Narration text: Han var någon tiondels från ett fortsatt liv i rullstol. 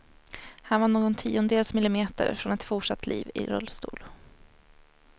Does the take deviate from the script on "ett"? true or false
false